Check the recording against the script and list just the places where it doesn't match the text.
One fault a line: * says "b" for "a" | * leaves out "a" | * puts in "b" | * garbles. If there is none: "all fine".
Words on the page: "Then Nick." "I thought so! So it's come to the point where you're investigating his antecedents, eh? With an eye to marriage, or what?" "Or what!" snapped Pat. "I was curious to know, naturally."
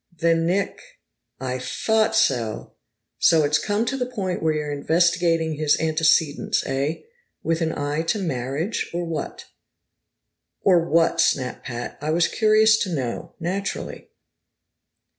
all fine